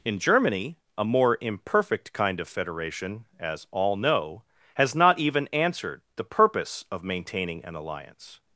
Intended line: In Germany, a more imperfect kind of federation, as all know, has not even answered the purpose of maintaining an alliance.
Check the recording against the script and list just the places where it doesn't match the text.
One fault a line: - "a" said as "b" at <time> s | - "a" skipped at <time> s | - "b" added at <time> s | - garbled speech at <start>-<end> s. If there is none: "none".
none